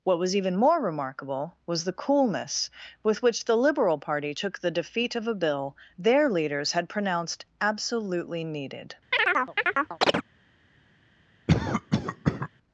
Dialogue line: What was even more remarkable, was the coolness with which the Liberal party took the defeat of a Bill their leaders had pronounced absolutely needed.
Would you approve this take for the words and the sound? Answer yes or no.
no